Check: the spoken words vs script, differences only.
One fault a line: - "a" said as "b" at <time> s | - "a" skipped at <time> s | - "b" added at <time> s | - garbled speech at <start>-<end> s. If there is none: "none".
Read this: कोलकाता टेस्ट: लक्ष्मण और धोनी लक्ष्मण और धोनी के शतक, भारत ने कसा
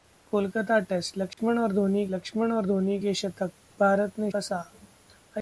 none